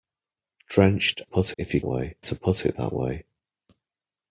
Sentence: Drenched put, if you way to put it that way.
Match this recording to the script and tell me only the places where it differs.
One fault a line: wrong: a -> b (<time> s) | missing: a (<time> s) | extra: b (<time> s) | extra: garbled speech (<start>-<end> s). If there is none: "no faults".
no faults